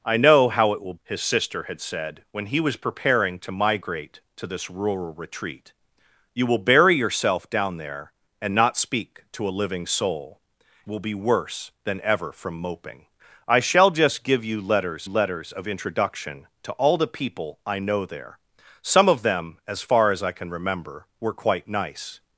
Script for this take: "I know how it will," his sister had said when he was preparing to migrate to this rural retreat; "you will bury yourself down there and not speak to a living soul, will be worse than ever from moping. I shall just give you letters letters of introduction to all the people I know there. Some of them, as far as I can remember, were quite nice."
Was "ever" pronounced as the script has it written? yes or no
yes